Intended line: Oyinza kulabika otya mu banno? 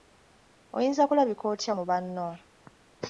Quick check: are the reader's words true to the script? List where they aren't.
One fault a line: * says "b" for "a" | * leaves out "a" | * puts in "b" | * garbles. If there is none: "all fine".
all fine